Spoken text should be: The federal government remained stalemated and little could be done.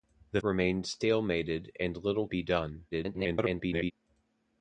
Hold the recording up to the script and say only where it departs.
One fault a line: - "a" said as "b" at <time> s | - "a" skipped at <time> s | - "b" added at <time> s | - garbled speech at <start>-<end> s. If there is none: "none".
- "federal government" skipped at 0.4 s
- "could" skipped at 2.3 s
- garbled speech at 2.9-3.9 s